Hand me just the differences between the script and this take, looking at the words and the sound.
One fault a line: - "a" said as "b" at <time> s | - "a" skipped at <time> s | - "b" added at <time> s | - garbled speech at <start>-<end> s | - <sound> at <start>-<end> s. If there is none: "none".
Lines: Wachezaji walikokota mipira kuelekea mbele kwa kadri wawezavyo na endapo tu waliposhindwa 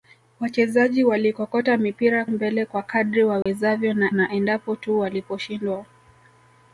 - "kuelekea" skipped at 2.2 s
- dropout at 3.4-3.5 s
- "na" added at 4.1 s